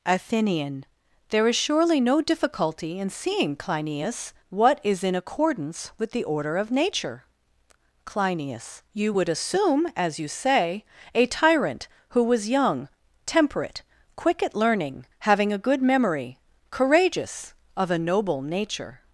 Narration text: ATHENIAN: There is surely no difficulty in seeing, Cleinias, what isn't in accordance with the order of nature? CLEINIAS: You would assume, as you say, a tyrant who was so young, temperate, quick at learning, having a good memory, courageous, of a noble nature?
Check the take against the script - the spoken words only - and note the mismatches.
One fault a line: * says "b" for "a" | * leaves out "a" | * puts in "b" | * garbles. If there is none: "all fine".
* says "is" for "isn't"
* leaves out "so"